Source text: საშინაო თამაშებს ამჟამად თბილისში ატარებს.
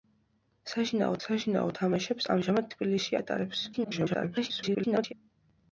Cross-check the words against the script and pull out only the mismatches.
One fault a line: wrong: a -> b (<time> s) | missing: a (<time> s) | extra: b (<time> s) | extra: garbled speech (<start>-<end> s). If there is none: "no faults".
extra: საშინაო (1.2 s)
extra: garbled speech (3.7-5.1 s)